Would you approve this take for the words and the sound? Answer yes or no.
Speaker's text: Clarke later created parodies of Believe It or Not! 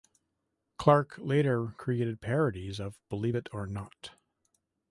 yes